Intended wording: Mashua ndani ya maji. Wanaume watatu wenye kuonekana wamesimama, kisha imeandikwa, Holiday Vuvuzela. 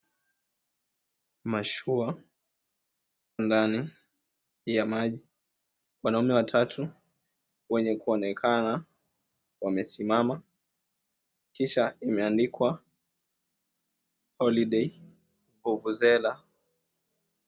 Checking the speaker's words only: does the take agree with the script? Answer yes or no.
yes